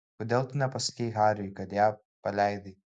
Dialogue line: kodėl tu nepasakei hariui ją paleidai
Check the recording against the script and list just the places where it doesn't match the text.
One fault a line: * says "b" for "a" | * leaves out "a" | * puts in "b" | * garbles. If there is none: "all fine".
* puts in "kad"